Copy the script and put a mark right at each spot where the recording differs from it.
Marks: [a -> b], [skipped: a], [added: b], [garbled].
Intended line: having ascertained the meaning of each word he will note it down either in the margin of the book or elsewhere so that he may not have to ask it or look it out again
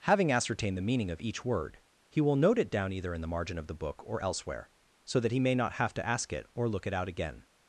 having ascertained the meaning of each word he will note it down either in the margin of the book or elsewhere so that he may not have to ask it or look it out again